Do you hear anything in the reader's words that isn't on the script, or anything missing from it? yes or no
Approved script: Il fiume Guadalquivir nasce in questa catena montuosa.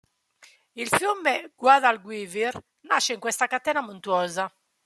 no